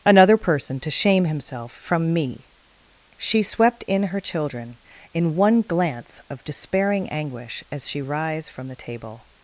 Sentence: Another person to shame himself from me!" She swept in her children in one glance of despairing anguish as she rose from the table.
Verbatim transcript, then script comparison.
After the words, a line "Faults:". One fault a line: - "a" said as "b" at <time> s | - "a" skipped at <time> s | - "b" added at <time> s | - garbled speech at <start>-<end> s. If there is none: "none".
Another person to shame himself from me!" She swept in her children in one glance of despairing anguish as she rise from the table.
Faults:
- "rose" said as "rise" at 8.0 s